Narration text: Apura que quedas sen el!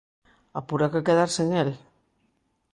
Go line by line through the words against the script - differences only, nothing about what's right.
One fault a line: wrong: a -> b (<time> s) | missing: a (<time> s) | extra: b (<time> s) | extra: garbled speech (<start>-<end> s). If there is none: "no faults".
no faults